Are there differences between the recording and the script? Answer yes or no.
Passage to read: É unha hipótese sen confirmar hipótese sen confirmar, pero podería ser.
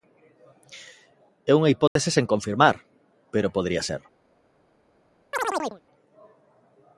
yes